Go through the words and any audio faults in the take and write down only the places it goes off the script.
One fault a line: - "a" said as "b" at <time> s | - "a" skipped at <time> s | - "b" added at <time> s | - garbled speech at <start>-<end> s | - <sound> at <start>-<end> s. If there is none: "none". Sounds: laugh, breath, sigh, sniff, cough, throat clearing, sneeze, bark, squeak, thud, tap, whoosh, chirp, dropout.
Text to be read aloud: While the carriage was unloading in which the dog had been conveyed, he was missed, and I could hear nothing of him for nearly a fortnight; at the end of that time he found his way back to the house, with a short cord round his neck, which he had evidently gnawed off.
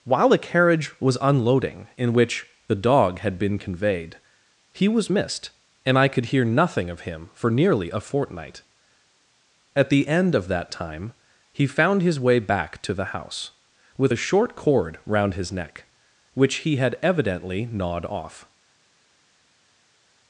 none